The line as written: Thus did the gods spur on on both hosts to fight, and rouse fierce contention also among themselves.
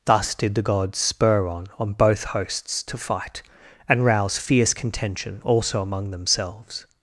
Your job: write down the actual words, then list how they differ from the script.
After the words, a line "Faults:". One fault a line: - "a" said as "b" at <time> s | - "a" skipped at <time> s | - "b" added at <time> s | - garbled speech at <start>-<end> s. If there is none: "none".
Thus did the gods spur on on both hosts to fight, and rouse fierce contention also among themselves.
Faults:
none